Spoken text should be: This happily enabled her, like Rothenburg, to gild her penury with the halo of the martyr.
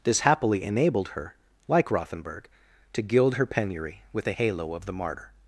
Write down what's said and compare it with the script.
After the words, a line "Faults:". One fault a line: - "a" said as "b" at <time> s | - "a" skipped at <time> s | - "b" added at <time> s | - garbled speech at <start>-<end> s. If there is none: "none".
This happily enabled her, like Rothenburg, to gild her penury with the halo of the martyr.
Faults:
none